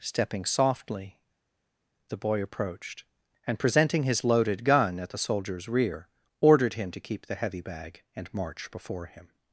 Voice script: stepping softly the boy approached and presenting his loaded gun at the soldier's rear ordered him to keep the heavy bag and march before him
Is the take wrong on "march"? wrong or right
right